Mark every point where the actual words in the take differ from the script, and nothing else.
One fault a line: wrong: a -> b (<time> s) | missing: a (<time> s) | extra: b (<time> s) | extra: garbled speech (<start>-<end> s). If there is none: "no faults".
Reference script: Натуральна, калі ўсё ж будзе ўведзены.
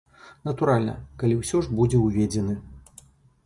no faults